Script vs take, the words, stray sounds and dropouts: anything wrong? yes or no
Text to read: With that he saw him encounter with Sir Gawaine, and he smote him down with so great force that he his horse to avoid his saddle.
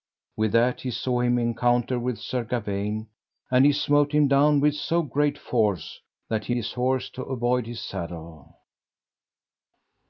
no